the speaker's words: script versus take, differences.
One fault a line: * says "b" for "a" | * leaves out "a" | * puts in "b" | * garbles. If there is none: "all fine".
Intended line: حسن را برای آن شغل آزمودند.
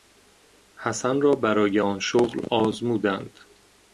all fine